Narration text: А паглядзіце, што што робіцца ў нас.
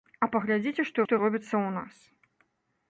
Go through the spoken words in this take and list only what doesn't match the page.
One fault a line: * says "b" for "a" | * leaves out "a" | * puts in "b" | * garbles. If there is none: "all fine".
all fine